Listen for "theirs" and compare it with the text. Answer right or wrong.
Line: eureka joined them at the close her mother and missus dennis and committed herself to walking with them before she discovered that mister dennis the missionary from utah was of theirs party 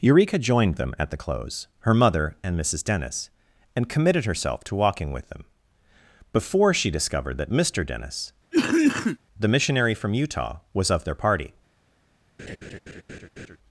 wrong